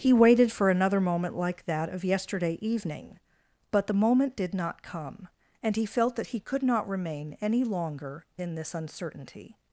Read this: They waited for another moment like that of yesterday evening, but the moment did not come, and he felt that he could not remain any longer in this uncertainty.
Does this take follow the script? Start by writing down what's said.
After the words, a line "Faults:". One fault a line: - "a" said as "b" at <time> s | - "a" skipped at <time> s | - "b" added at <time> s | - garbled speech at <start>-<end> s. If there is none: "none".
He waited for another moment like that of yesterday evening, but the moment did not come, and he felt that he could not remain any longer in this uncertainty.
Faults:
- "They" said as "He" at 0.0 s